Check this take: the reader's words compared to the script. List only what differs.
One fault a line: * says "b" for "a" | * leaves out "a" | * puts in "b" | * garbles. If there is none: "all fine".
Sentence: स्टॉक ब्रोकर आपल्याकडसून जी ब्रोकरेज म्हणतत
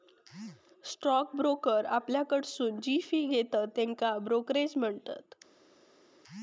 * puts in "फी घेतत त्येका"